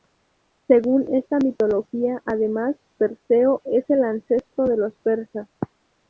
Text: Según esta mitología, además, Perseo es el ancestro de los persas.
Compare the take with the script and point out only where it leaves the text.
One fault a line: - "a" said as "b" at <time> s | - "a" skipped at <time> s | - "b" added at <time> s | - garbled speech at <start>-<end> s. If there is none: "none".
none